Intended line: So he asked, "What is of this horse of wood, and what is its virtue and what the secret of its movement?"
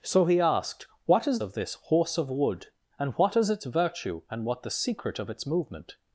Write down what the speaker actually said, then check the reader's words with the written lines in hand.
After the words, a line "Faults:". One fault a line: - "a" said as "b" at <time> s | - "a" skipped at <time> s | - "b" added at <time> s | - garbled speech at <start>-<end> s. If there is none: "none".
So he asked, "What is of this horse of wood, and what is its virtue and what the secret of its movement?"
Faults:
none